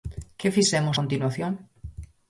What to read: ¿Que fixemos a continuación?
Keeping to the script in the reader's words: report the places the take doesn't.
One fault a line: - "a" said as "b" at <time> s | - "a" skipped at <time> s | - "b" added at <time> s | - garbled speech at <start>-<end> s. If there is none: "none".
- "a" skipped at 1.0 s